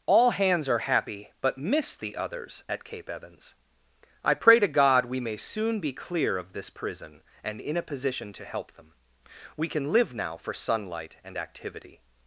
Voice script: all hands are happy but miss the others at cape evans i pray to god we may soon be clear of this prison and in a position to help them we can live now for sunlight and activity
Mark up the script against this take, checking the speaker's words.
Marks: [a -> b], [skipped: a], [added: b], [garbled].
all hands are happy but miss the others at cape evans i pray to god we may soon be clear of this prison and in a position to help them we can live now for sunlight and activity